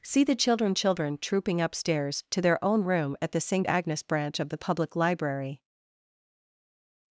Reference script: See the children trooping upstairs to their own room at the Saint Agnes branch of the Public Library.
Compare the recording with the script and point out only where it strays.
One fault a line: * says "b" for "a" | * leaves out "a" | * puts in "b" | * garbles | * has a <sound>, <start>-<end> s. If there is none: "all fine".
* puts in "children"